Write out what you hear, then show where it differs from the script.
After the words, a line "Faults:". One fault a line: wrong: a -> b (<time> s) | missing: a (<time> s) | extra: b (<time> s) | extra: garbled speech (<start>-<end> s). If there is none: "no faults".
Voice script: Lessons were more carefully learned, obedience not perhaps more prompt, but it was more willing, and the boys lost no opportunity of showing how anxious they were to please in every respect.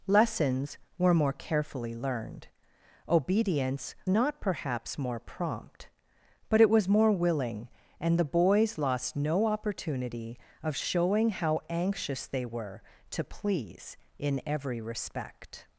Lessons were more carefully learned, obedience not perhaps more prompt, but it was more willing, and the boys lost no opportunity of showing how anxious they were to please in every respect.
Faults:
no faults